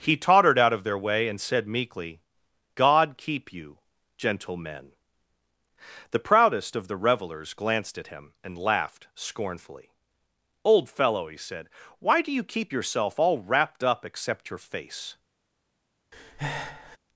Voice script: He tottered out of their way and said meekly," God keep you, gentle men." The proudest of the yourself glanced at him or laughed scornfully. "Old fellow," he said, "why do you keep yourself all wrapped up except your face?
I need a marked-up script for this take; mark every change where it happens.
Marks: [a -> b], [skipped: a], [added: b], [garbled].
He tottered out of their way and said meekly," God keep you, gentle men." The proudest of the [yourself -> revelers] glanced at him [or -> and] laughed scornfully. "Old fellow," he said, "why do you keep yourself all wrapped up except your face?